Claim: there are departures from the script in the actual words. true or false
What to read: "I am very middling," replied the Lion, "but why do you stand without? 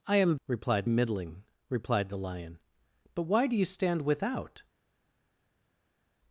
true